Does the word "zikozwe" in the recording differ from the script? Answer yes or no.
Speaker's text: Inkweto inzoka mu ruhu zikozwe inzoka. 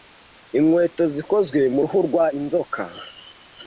yes